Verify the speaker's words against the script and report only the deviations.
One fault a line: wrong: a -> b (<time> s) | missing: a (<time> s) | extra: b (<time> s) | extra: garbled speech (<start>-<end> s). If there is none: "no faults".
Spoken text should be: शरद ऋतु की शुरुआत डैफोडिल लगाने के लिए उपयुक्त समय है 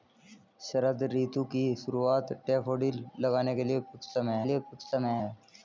extra: लिए उपयुक्त समय (4.4 s)